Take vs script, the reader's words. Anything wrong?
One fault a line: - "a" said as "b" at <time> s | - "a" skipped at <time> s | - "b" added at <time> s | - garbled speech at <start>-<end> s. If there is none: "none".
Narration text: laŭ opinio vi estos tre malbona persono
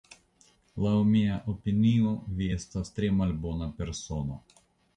- "mia" added at 1.1 s
- "estos" said as "estas" at 2.6 s